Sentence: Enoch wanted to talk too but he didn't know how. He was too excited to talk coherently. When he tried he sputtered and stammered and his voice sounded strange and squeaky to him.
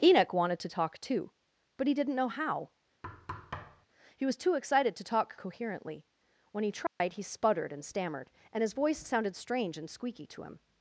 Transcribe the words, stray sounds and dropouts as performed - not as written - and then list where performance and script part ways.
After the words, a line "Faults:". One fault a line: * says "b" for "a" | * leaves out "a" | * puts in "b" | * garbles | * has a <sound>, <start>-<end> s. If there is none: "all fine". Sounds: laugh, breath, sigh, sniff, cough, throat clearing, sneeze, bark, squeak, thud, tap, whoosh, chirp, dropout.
Enoch wanted to talk too but he didn't know how. He was too excited to talk coherently. When he tried he sputtered and stammered and his voice sounded strange and squeaky to him.
Faults:
* has a thud, 3.0-3.9 s
* has a dropout, 6.9-7.0 s